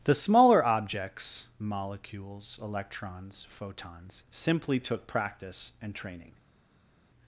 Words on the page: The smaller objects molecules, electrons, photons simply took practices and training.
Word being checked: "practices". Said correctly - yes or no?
no